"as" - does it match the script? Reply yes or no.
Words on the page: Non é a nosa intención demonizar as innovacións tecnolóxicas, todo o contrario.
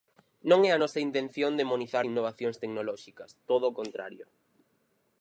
no